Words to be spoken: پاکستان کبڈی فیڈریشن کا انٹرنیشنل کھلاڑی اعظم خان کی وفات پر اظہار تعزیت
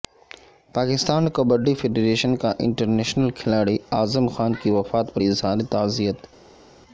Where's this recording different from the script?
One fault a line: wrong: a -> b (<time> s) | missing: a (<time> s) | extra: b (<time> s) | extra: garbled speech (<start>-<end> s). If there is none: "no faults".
no faults